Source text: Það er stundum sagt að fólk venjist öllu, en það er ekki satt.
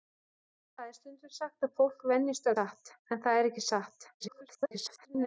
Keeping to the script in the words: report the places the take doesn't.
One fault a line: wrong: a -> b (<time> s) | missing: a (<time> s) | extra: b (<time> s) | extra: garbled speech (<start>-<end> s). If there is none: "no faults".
wrong: öllu -> satt (2.6 s)
extra: garbled speech (4.2-5.3 s)